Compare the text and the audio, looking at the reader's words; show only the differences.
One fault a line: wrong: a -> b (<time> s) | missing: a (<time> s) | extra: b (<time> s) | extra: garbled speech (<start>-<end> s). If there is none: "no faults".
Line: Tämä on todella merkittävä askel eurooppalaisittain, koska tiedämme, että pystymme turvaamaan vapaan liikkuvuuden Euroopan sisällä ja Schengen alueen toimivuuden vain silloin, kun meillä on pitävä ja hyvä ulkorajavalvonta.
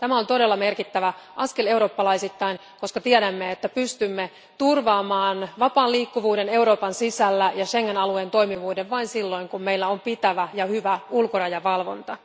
no faults